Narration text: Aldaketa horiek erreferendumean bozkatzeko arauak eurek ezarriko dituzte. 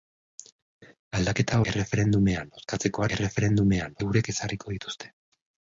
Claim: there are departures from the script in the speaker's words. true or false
true